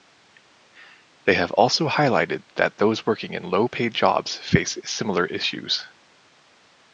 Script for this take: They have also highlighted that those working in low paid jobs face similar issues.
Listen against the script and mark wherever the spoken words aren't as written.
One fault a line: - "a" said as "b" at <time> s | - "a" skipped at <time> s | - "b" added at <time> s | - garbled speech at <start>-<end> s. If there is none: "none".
none